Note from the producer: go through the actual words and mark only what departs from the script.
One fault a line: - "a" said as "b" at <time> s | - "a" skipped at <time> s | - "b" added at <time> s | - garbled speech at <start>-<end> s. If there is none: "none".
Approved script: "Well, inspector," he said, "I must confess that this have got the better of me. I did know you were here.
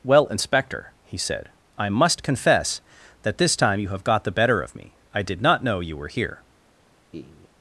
- "time you" added at 3.5 s
- "not" added at 5.4 s